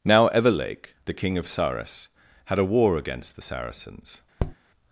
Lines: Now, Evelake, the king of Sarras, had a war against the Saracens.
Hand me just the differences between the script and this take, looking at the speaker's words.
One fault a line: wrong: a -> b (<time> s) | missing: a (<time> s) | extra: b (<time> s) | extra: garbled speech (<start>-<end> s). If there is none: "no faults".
no faults